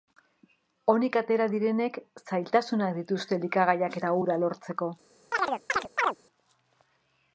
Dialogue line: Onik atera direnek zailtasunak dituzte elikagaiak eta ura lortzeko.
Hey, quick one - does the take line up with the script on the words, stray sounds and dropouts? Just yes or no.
no